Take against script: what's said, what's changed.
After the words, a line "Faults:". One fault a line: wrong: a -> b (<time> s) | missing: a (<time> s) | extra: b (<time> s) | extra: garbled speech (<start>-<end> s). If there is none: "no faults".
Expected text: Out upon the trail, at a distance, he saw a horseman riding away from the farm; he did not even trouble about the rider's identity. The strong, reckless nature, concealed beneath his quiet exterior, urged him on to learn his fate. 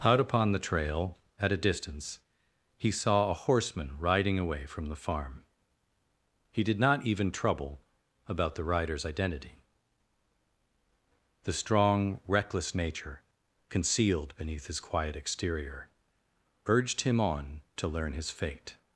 Out upon the trail, at a distance, he saw a horseman riding away from the farm; he did not even trouble about the rider's identity. The strong, reckless nature, concealed beneath his quiet exterior, urged him on to learn his fate.
Faults:
no faults